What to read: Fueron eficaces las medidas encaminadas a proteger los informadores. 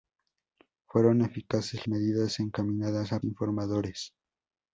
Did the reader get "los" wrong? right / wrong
wrong